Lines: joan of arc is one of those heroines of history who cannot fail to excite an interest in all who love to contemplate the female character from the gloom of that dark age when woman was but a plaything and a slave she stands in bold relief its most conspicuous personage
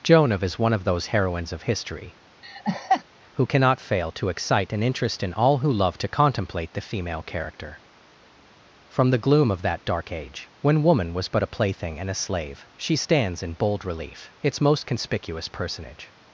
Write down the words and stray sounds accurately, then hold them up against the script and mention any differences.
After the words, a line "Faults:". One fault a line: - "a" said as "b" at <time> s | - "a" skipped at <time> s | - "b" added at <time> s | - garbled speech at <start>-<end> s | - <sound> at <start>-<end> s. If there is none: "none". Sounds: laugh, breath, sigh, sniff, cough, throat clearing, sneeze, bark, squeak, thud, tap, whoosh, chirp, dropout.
joan of is one of those heroines of history who cannot fail to excite an interest in all who love to contemplate the female character from the gloom of that dark age when woman was but a plaything and a slave she stands in bold relief its most conspicuous personage
Faults:
- "arc" skipped at 0.4 s
- laugh at 2.4-3.0 s